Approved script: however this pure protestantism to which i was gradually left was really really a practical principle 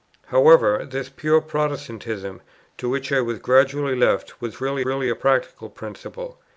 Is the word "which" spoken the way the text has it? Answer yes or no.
yes